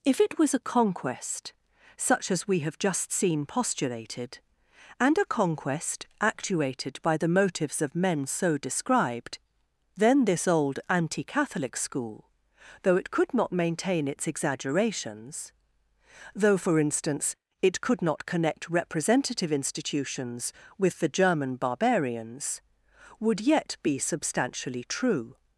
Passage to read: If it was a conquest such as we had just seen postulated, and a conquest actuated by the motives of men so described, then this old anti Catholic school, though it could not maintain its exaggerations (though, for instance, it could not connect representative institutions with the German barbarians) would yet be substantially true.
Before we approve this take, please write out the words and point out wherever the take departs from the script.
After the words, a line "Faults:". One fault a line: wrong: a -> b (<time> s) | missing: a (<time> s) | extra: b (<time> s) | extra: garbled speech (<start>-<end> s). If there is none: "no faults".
If it was a conquest such as we have just seen postulated, and a conquest actuated by the motives of men so described, then this old anti Catholic school, though it could not maintain its exaggerations (though, for instance, it could not connect representative institutions with the German barbarians) would yet be substantially true.
Faults:
wrong: had -> have (2.6 s)